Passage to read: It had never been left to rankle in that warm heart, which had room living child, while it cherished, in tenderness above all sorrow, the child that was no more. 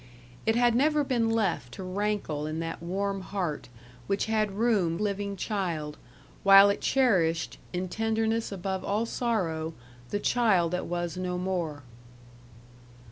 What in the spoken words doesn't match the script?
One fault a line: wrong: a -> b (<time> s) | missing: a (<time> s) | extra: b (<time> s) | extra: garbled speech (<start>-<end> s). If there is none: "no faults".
no faults